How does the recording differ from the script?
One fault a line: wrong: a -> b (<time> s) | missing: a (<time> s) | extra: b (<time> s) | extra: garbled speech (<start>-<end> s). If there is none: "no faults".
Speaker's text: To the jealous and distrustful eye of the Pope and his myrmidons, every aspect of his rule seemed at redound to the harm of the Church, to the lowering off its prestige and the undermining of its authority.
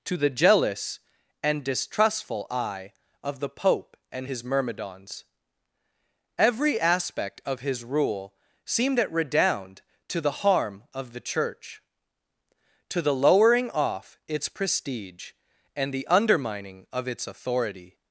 no faults